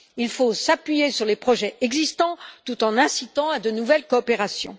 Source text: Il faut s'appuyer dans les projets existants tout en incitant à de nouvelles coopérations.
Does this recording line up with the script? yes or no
no